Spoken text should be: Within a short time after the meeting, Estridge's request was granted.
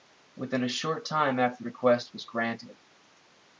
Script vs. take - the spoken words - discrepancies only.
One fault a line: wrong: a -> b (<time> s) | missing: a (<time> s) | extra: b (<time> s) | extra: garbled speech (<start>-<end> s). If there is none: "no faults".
missing: the meeting Estridge's (1.6 s)